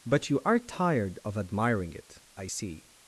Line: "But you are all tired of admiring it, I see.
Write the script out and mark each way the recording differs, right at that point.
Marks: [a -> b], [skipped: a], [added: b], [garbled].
"But you are [skipped: all] tired of admiring it, I see.